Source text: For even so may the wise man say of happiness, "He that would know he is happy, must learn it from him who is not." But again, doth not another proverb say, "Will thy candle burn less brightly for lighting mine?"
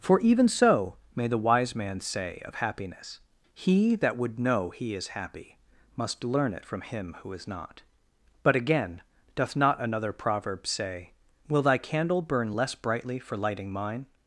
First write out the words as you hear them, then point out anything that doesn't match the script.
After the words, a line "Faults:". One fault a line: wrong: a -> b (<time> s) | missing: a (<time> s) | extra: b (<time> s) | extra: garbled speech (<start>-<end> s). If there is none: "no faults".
For even so may the wise man say of happiness, "He that would know he is happy, must learn it from him who is not." But again, doth not another proverb say, "Will thy candle burn less brightly for lighting mine?"
Faults:
no faults